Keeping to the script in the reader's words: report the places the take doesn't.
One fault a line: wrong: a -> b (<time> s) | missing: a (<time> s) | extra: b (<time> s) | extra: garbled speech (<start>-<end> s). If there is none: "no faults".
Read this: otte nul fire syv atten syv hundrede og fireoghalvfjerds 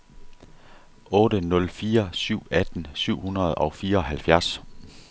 no faults